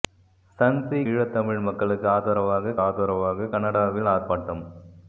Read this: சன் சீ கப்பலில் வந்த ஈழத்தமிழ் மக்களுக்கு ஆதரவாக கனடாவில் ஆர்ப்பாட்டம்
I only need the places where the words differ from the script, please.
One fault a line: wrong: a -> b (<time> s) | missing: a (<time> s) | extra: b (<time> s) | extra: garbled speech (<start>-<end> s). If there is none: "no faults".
missing: கப்பலில் வந்த (1.0 s)
extra: ஆதரவாக (2.8 s)